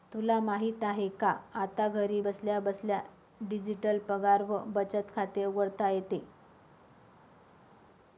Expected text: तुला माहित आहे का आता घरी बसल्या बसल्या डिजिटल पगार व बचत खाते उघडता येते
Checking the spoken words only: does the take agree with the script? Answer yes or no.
yes